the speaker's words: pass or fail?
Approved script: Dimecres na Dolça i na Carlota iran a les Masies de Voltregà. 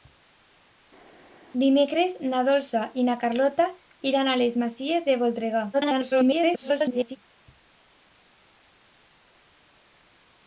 fail